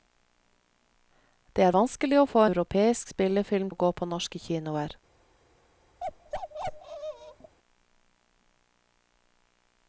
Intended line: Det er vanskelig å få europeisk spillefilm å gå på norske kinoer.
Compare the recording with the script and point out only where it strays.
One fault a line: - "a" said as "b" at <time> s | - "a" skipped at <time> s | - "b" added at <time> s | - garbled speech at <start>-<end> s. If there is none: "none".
none